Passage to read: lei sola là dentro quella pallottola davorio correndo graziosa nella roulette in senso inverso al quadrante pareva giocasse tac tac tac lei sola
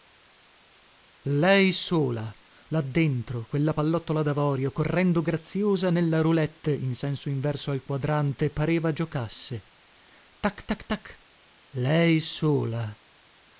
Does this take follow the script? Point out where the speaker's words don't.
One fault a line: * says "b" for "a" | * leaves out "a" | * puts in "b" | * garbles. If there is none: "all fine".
all fine